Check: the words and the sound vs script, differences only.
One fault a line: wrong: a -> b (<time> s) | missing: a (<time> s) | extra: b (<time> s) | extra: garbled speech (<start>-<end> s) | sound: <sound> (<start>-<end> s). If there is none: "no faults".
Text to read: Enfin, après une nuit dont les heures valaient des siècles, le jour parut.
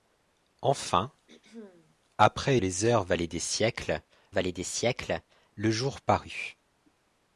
sound: throat clearing (1.3-2.0 s)
wrong: une nuit dont les heures -> les heures valaient des siècles (2.6 s)